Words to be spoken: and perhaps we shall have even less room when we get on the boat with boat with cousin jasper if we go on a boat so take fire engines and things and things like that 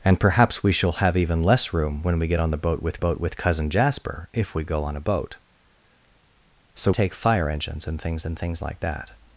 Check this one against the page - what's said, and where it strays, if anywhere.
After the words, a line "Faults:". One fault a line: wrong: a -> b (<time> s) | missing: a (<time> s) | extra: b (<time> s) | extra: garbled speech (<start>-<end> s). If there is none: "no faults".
and perhaps we shall have even less room when we get on the boat with boat with cousin jasper if we go on a boat so take fire engines and things and things like that
Faults:
no faults